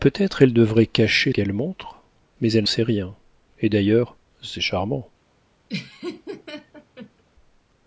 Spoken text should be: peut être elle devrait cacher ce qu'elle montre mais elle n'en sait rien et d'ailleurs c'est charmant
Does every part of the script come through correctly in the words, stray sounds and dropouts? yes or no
no